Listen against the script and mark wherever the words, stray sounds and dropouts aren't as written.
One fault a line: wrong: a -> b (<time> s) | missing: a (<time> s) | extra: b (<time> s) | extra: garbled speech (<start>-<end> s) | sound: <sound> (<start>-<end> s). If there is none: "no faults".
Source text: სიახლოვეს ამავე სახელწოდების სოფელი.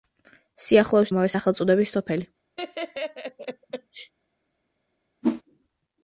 sound: laugh (2.6-4.1 s)
sound: whoosh (5.2-5.4 s)